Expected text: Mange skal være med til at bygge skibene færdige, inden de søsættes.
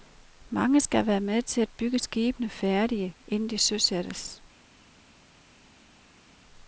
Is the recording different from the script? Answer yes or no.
no